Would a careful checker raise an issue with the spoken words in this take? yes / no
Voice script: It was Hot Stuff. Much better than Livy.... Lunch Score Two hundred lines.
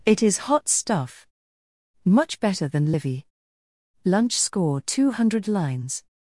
yes